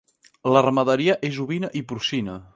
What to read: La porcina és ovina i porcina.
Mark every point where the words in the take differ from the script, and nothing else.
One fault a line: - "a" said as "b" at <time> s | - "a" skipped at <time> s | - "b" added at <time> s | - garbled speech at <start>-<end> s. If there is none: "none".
- "porcina" said as "ramaderia" at 0.6 s